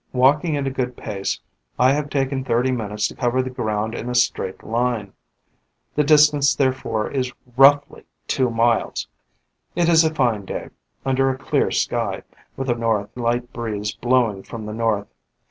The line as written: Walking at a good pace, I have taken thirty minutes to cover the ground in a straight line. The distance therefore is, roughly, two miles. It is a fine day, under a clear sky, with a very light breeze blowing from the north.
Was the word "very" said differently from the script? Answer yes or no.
yes